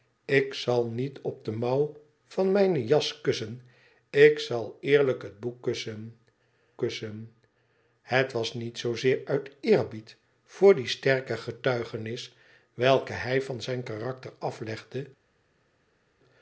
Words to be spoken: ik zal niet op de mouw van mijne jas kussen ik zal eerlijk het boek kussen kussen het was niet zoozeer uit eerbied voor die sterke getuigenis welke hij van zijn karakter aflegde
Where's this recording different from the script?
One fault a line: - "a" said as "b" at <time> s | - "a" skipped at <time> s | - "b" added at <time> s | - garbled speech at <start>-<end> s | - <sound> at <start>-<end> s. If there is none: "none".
none